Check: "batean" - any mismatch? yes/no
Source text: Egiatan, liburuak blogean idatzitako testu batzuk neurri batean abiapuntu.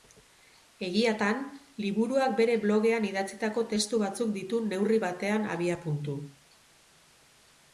no